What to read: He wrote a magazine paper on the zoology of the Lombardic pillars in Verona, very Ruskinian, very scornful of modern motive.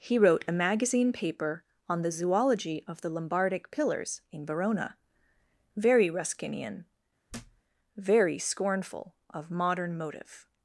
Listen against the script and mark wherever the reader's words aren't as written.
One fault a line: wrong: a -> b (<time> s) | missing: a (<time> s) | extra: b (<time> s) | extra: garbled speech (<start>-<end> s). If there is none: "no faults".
no faults